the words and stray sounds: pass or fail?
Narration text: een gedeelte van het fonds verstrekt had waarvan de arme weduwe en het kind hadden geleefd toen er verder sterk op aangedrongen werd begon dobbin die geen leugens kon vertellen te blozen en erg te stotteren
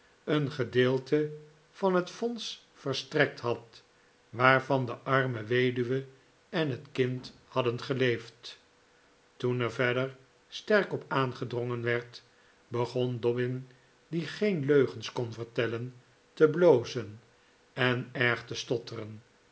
pass